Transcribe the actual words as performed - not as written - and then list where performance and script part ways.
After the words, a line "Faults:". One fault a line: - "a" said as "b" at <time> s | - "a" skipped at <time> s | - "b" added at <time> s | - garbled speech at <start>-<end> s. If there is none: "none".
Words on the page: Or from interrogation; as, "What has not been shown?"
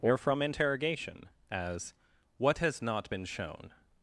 Or from interrogation; as, "What has not been shown?"
Faults:
none